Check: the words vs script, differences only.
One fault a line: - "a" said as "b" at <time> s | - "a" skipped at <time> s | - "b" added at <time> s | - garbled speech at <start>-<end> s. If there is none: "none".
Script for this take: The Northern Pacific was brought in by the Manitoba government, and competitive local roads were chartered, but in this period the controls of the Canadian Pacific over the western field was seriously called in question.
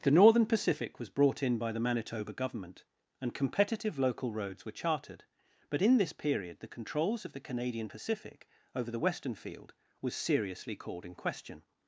none